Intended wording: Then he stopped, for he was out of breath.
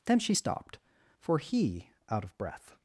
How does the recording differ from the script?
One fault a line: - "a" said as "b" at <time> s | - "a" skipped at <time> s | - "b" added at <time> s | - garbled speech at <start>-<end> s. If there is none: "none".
- "he" said as "she" at 0.2 s
- "was" skipped at 1.9 s